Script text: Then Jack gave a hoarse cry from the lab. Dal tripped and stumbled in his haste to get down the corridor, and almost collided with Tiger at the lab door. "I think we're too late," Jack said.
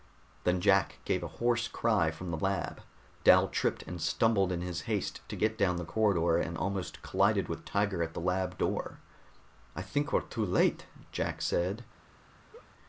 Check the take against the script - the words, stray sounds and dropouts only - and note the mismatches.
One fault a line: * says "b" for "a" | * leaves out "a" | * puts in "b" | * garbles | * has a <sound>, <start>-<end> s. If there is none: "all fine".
* has a laugh, 12.5-12.7 s